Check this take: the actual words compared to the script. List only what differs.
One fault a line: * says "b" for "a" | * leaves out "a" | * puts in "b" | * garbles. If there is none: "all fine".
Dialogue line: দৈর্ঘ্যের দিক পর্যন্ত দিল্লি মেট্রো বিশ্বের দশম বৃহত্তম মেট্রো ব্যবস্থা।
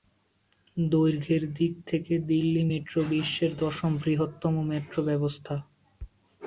* says "থেকে" for "পর্যন্ত"